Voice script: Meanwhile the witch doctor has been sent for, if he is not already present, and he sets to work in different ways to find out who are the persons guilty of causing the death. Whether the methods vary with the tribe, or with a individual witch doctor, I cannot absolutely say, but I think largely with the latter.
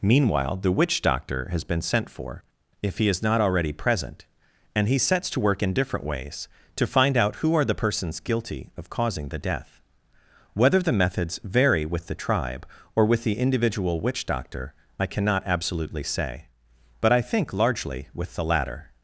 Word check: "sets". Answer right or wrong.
right